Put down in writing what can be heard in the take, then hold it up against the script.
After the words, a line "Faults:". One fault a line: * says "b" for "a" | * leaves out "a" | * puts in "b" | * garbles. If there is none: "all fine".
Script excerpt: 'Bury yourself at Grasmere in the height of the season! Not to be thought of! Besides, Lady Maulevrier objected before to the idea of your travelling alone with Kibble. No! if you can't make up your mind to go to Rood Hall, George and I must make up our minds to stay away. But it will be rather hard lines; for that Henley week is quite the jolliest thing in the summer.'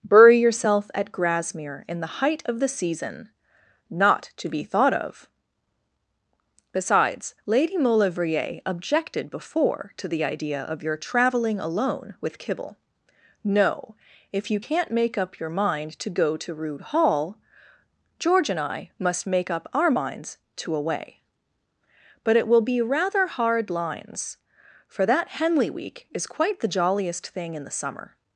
'Bury yourself at Grasmere in the height of the season! Not to be thought of! Besides, Lady Maulevrier objected before to the idea of your travelling alone with Kibble. No! if you can't make up your mind to go to Rood Hall, George and I must make up our minds to away. But it will be rather hard lines; for that Henley week is quite the jolliest thing in the summer.'
Faults:
* leaves out "stay"